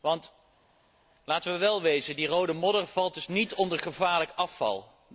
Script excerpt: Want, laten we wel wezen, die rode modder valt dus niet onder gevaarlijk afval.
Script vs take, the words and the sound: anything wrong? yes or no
no